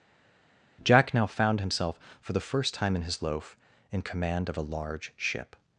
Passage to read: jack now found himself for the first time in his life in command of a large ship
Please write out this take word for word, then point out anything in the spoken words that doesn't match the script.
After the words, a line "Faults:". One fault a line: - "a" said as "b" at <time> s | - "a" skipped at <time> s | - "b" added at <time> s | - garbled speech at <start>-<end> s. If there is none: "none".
jack now found himself for the first time in his loaf in command of a large ship
Faults:
- "life" said as "loaf" at 3.2 s